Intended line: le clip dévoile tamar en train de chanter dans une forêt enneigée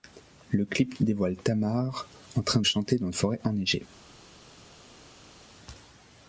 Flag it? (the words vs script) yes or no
yes